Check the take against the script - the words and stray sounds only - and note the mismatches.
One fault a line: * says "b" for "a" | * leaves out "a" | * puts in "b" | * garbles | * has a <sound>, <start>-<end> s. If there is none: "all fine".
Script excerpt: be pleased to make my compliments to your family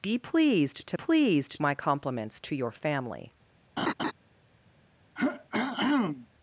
* says "pleased" for "make"
* has a laugh, 3.8-4.1 s
* has a throat clearing, 5.2-6.3 s